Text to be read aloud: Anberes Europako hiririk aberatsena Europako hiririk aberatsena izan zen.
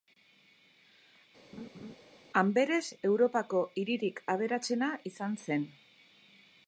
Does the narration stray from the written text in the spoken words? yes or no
yes